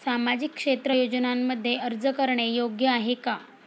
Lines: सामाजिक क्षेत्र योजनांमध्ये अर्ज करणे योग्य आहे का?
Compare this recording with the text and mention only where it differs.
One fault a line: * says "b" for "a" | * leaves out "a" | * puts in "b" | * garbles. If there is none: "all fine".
all fine